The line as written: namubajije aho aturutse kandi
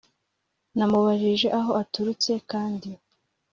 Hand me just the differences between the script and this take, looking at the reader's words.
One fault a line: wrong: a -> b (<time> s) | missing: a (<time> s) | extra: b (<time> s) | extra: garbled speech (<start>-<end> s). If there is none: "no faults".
no faults